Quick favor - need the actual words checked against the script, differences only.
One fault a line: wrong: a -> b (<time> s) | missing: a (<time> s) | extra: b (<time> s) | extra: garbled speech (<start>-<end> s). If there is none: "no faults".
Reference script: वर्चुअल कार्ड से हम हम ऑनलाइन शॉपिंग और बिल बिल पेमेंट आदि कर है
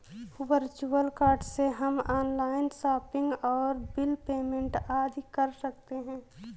missing: हम (2.0 s)
missing: बिल (4.1 s)
extra: सकते (5.6 s)